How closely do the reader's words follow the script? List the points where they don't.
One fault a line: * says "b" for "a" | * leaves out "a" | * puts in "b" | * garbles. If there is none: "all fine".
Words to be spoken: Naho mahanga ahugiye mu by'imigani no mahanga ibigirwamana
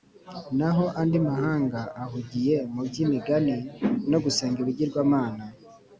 * puts in "andi"
* says "gusenga" for "mahanga"